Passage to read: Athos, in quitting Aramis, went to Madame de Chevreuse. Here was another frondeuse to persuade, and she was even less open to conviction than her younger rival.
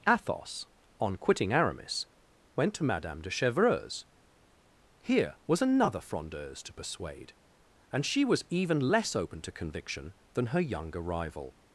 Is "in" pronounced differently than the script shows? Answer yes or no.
yes